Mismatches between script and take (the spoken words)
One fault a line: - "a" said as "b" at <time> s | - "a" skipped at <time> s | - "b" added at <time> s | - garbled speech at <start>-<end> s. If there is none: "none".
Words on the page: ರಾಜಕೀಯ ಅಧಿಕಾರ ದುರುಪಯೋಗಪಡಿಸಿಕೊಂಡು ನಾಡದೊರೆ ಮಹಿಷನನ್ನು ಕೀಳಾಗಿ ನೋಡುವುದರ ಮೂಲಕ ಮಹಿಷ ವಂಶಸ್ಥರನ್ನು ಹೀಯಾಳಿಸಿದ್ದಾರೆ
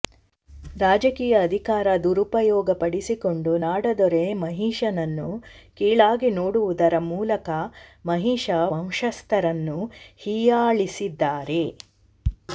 none